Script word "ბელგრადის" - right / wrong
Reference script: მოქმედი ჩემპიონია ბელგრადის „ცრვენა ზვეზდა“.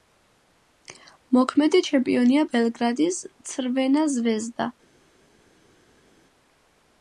right